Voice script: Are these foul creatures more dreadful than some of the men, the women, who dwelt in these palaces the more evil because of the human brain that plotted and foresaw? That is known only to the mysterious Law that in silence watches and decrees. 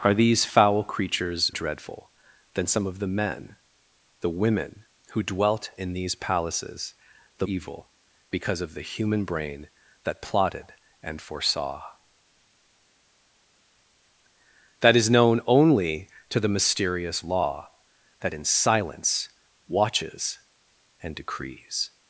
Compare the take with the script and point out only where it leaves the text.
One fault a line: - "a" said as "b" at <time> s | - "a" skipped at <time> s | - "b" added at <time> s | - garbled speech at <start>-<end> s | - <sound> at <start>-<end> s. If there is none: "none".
- "more" skipped at 1.5 s
- "more" skipped at 7.5 s